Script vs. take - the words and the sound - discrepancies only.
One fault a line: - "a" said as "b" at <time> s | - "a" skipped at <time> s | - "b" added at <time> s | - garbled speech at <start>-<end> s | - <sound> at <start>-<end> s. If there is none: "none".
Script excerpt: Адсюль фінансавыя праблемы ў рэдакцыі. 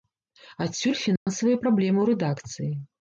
- dropout at 1.2-1.3 s